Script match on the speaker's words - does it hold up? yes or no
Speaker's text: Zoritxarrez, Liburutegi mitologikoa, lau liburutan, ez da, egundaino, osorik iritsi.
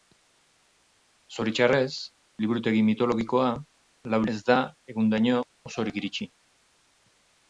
no